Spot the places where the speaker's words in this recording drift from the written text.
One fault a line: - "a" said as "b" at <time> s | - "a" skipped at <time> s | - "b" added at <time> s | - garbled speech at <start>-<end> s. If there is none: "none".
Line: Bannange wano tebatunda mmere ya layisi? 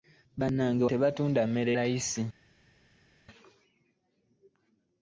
- "wano" skipped at 0.8 s
- "ya" skipped at 1.7 s